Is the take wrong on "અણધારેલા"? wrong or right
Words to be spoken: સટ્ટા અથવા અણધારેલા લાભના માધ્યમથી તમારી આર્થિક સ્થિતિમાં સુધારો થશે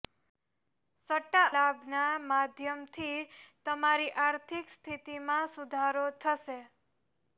wrong